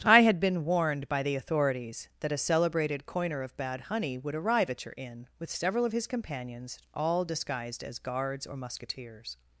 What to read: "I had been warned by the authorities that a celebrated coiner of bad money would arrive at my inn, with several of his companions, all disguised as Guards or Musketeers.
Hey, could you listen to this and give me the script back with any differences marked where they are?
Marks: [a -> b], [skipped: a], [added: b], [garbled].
"I had been warned by the authorities that a celebrated coiner of bad [money -> honey] would arrive at [my -> your] inn, with several of his companions, all disguised as Guards or Musketeers.